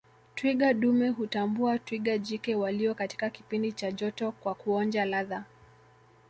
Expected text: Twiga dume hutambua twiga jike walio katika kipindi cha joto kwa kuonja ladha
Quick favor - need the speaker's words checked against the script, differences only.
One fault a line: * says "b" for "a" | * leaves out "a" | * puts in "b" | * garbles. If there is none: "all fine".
all fine